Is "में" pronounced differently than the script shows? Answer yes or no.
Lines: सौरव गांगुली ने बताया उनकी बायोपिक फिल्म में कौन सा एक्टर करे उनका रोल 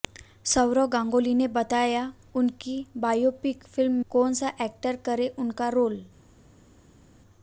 yes